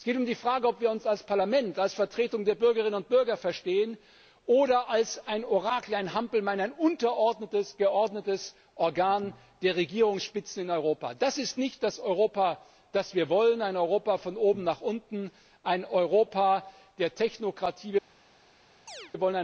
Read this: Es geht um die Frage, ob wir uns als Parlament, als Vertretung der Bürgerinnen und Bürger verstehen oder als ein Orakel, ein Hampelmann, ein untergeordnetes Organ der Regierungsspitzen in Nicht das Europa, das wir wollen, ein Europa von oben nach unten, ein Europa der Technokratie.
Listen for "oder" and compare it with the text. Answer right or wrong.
right